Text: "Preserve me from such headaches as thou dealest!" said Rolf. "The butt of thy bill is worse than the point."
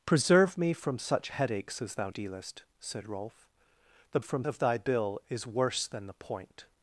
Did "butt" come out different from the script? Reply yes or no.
yes